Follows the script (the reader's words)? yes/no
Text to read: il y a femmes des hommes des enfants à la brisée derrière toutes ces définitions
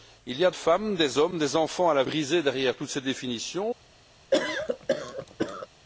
yes